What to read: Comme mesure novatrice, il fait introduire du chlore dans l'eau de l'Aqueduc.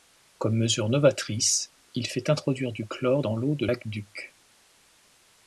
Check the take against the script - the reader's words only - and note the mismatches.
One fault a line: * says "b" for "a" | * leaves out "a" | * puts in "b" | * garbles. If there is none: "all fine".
all fine